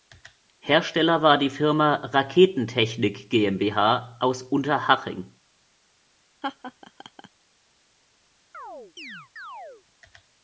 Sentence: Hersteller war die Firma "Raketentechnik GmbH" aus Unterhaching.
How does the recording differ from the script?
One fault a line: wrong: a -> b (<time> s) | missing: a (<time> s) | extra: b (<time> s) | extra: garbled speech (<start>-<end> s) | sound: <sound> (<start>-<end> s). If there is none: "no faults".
sound: laugh (6.4-7.3 s)
sound: chirp (8.5-9.8 s)